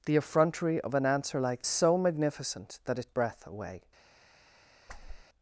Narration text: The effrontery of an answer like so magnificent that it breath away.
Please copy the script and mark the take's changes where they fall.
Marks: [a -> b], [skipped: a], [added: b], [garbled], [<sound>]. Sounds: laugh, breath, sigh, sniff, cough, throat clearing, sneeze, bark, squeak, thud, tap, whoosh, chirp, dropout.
The effrontery of an answer like so magnificent that it breath away. [whoosh]